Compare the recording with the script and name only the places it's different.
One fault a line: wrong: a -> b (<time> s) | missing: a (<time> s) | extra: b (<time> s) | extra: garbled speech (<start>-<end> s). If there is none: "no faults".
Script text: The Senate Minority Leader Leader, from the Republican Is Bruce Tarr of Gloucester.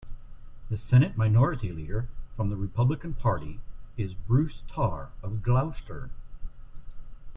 missing: Leader (2.1 s)
extra: Party (3.1 s)